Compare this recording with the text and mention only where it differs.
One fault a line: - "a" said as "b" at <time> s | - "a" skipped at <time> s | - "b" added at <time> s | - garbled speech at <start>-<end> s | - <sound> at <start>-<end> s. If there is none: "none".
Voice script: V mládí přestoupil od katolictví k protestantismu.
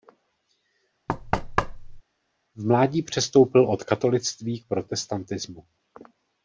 - thud at 1.1-2.0 s